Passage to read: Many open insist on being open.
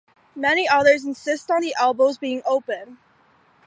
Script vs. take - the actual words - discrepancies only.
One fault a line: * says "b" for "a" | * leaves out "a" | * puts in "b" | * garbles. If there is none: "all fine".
* says "others" for "open"
* puts in "the elbows"